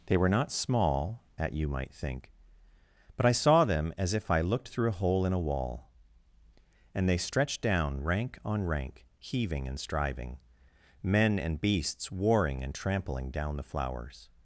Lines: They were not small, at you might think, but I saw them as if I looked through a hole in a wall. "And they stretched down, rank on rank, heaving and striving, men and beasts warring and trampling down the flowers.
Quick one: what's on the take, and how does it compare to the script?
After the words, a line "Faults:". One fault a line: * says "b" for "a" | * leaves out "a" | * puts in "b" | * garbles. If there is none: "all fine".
They were not small, at you might think, but I saw them as if I looked through a hole in a wall. "And they stretched down, rank on rank, heaving and striving, men and beasts warring and trampling down the flowers.
Faults:
all fine